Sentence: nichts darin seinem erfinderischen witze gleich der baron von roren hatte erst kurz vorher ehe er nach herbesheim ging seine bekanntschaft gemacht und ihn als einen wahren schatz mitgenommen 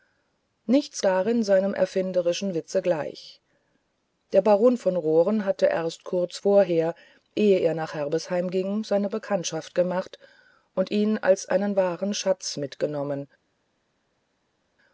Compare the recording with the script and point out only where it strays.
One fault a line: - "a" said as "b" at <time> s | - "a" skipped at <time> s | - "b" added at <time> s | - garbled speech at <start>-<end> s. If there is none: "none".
none